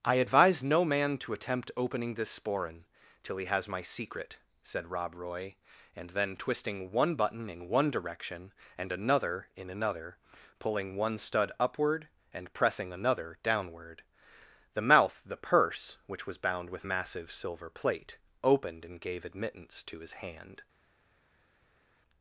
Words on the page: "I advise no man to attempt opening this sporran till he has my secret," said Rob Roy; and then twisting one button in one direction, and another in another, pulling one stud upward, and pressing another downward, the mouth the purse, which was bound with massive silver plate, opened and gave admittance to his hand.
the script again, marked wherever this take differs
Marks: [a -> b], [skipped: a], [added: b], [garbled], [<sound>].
"I advise no man to attempt opening this sporran till he has my secret," said Rob Roy; and then twisting one button in one direction, and another in another, pulling one stud upward, and pressing another downward, the mouth the purse, which was bound with massive silver plate, opened and gave admittance to his hand.